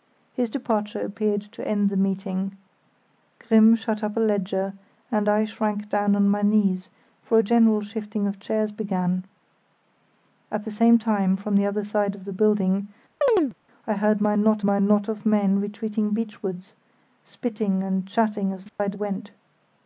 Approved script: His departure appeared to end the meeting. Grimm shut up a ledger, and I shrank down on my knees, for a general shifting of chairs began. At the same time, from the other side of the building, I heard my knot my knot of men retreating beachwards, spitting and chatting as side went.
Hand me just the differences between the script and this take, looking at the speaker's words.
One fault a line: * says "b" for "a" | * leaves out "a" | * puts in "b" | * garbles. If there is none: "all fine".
all fine